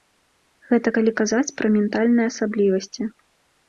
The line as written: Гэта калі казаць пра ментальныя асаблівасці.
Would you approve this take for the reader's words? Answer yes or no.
yes